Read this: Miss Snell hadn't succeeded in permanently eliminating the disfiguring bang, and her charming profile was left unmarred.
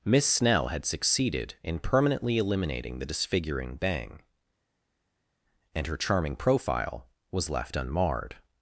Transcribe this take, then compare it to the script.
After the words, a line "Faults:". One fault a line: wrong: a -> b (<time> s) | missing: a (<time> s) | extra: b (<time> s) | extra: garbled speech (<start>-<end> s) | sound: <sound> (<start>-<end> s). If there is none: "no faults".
Miss Snell had succeeded in permanently eliminating the disfiguring bang, and her charming profile was left unmarred.
Faults:
wrong: hadn't -> had (0.7 s)